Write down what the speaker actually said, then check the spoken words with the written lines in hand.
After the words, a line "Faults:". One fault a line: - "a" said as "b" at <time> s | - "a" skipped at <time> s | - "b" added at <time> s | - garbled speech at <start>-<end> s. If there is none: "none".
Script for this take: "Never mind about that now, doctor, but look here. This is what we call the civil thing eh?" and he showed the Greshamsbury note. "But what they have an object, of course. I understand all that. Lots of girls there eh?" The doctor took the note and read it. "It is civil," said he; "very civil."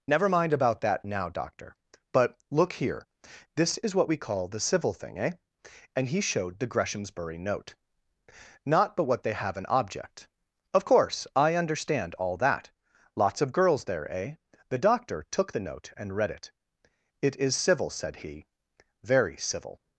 "Never mind about that now, doctor, but look here. This is what we call the civil thing eh?" and he showed the Greshamsbury note. "Not but what they have an object, of course. I understand all that. Lots of girls there eh?" The doctor took the note and read it. "It is civil," said he; "very civil."
Faults:
- "Not" added at 8.6 s